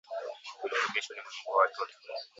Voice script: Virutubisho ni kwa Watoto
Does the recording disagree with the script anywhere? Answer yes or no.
yes